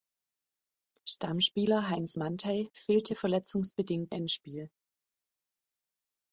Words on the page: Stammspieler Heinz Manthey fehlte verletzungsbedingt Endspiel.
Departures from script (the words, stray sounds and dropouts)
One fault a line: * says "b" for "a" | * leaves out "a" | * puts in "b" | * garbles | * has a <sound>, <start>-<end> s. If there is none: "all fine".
all fine